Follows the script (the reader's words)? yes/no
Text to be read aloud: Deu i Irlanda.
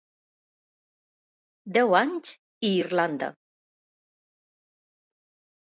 no